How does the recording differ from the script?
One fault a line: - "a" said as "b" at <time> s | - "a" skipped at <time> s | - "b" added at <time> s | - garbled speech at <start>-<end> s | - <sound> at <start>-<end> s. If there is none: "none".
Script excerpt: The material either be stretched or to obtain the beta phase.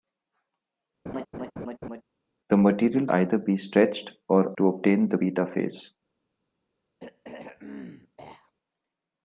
- laugh at 1.1-2.0 s
- throat clearing at 7.0-8.5 s